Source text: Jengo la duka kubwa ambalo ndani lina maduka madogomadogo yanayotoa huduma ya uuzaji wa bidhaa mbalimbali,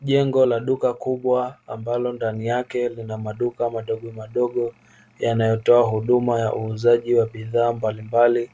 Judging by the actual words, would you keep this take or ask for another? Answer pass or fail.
fail